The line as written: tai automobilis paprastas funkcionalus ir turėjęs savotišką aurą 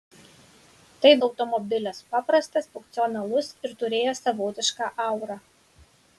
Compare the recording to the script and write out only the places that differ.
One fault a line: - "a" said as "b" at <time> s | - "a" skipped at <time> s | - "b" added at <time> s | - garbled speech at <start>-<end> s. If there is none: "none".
none